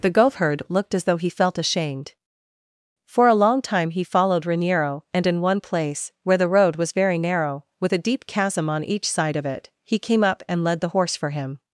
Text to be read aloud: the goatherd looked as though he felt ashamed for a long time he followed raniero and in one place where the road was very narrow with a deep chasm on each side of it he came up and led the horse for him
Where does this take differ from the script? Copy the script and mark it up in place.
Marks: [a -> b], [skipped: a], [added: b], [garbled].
the goatherd looked as though he felt ashamed for a long time he followed raniero and in one place where the road was very narrow with a deep chasm on each side of it he came up and led the horse for him